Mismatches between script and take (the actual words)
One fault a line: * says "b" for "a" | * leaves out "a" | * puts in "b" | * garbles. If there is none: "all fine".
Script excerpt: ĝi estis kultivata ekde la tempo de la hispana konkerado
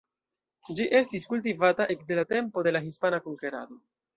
all fine